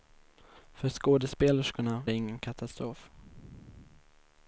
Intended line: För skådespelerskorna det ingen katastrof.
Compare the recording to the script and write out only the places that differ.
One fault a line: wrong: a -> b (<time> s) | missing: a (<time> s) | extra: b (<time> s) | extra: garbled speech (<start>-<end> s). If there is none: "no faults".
no faults